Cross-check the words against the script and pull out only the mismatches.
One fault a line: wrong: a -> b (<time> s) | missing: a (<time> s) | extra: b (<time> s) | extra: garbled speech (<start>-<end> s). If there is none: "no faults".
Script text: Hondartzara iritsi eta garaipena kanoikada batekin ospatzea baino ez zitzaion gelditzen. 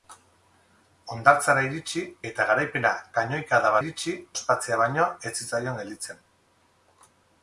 wrong: batekin -> iritsi (3.8 s)